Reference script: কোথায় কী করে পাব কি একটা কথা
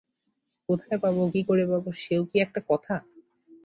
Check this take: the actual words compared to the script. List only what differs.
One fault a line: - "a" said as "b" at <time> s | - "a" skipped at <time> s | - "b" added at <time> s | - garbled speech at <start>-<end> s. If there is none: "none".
- "পাব" added at 1.0 s
- "সেও" added at 2.0 s